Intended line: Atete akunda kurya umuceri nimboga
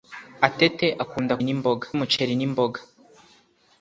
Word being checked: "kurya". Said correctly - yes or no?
no